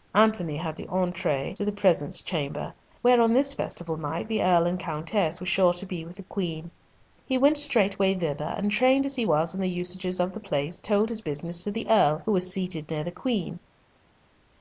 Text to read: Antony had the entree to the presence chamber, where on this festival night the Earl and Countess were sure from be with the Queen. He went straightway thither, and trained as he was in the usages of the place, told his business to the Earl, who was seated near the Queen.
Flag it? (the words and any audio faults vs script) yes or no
yes